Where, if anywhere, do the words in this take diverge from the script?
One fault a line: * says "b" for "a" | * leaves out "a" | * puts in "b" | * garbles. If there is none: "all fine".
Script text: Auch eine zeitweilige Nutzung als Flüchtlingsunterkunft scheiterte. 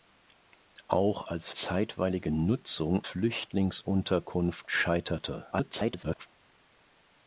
* says "als" for "eine"
* leaves out "als"
* garbles